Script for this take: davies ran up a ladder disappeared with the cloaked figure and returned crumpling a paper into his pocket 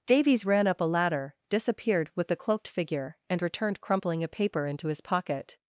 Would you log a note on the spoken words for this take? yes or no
no